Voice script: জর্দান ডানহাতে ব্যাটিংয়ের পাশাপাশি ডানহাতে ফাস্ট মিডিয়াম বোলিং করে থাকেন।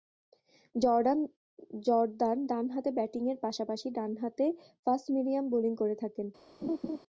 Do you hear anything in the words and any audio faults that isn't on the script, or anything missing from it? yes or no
yes